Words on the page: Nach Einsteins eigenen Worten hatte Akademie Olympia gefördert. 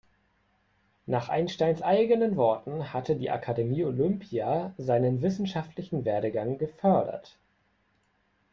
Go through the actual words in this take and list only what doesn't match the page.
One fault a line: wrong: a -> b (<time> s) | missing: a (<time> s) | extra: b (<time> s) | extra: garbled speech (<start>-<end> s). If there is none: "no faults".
extra: die (3.2 s)
extra: seinen wissenschaftlichen Werdegang (4.8 s)